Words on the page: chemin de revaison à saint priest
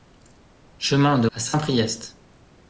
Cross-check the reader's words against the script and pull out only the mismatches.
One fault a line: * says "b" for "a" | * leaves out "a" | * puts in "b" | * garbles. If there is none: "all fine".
* leaves out "revaison"